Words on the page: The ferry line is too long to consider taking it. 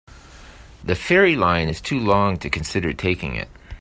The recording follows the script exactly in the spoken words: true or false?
true